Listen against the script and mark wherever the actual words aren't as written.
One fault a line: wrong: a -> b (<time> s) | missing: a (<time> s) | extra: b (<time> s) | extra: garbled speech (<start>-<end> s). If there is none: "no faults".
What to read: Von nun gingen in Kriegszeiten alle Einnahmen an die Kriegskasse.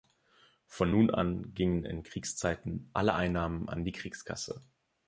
extra: an (1.1 s)